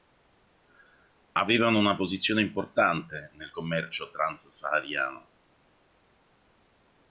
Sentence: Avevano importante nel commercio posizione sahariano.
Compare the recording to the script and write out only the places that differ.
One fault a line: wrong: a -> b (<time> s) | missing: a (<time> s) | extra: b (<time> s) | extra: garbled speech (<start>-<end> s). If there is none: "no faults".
extra: una posizione (1.8 s)
wrong: posizione -> trans (4.1 s)